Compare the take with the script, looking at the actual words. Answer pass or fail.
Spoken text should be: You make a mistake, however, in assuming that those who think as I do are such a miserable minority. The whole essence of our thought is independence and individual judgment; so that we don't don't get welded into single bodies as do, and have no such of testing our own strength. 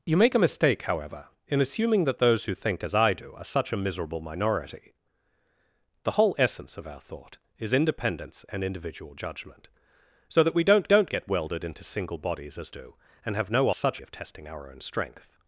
pass